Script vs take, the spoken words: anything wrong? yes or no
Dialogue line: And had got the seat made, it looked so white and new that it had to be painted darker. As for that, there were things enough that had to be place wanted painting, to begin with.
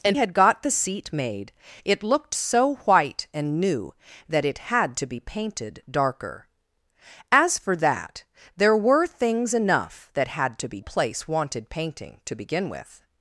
no